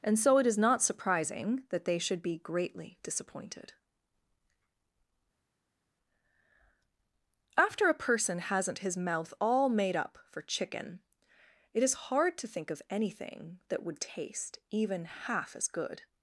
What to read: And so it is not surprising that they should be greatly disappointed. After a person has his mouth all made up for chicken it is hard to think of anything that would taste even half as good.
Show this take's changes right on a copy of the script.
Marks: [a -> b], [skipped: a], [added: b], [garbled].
And so it is not surprising that they should be greatly disappointed. After a person [has -> hasn't] his mouth all made up for chicken it is hard to think of anything that would taste even half as good.